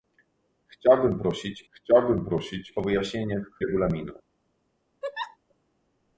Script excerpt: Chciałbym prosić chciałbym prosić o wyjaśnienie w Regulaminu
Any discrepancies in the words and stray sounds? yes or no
yes